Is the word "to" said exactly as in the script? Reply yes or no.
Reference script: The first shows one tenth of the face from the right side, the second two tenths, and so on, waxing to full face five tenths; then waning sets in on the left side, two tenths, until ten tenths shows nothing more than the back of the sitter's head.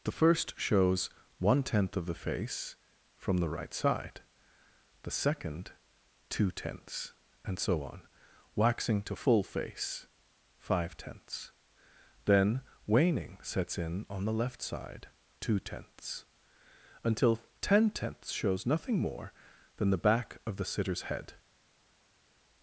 yes